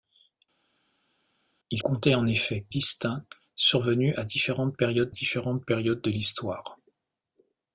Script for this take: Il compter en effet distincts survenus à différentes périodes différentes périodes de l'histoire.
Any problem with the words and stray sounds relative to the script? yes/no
no